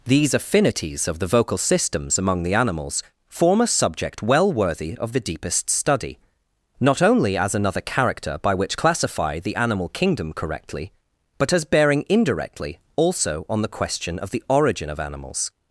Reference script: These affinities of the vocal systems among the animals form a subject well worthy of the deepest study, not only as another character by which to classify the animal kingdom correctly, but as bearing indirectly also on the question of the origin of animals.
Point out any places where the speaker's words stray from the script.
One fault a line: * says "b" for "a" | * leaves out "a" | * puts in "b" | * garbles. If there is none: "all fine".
* leaves out "to"